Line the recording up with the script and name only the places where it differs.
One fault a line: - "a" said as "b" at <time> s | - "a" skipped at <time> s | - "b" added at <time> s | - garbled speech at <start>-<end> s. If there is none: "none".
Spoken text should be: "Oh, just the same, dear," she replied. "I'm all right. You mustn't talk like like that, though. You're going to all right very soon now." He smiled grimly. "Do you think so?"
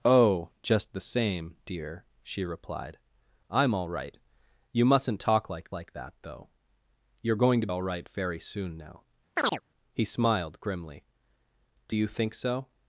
none